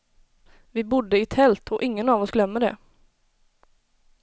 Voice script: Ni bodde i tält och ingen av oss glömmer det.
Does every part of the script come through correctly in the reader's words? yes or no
no